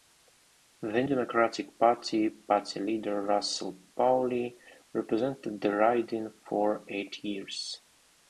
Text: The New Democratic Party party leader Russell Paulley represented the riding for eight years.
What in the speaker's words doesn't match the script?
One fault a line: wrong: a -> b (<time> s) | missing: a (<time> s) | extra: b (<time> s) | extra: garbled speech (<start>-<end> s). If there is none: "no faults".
missing: New (1.0 s)